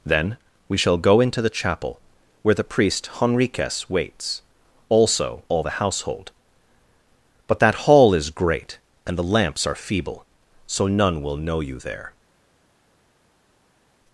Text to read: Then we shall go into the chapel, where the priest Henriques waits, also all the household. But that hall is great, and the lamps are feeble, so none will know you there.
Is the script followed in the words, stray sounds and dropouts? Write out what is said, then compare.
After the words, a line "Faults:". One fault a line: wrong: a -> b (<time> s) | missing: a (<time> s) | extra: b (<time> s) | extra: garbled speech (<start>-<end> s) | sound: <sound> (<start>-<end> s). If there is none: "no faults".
Then we shall go into the chapel, where the priest Henriques waits, also all the household. But that hall is great, and the lamps are feeble, so none will know you there.
Faults:
no faults